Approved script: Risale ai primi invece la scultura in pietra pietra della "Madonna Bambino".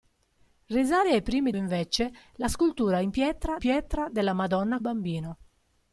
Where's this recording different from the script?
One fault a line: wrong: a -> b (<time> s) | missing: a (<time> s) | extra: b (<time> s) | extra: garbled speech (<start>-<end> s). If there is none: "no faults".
no faults